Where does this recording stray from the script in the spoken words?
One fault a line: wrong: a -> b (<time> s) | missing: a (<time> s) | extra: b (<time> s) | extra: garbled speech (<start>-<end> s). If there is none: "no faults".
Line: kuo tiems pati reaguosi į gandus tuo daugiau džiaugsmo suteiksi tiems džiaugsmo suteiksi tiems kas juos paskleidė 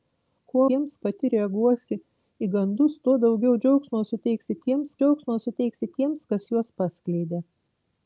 no faults